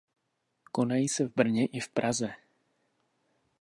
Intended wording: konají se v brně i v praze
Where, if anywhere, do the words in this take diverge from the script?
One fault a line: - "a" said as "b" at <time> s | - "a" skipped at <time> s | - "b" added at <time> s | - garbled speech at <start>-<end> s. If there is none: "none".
none